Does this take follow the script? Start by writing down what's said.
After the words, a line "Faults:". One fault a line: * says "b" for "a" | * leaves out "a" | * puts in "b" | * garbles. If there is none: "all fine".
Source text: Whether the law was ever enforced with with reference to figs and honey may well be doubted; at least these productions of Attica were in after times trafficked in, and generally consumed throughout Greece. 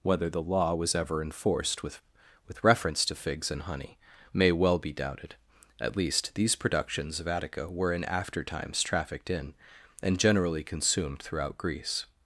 Whether the law was ever enforced with with reference to figs and honey may well be doubted; at least these productions of Attica were in after times trafficked in, and generally consumed throughout Greece.
Faults:
all fine